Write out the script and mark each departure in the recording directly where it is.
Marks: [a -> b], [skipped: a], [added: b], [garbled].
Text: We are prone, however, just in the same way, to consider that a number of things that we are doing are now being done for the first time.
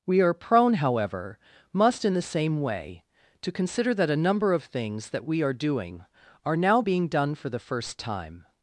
We are prone, however, [just -> must] in the same way, to consider that a number of things that we are doing are now being done for the first time.